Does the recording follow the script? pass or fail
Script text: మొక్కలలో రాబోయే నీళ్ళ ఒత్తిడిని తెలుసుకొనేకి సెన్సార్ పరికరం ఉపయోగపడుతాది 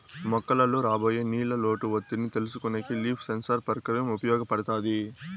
fail